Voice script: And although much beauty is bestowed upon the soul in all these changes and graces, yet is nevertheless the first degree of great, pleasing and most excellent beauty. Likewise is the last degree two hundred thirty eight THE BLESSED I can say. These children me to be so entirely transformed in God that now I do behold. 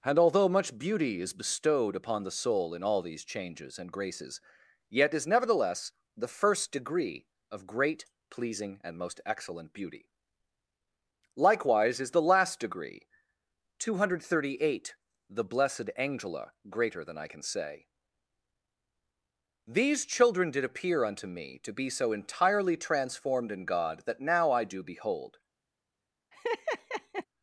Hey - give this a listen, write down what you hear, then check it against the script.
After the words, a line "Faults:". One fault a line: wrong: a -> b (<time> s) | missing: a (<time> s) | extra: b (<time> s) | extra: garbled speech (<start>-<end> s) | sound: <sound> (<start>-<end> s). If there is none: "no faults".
And although much beauty is bestowed upon the soul in all these changes and graces, yet is nevertheless the first degree of great, pleasing and most excellent beauty. Likewise is the last degree two hundred thirty eight THE BLESSED ANGELA greater than I can say. These children did appear unto me to be so entirely transformed in God that now I do behold.
Faults:
extra: ANGELA greater than (15.9 s)
extra: did appear unto (20.5 s)
sound: laugh (26.3-27.3 s)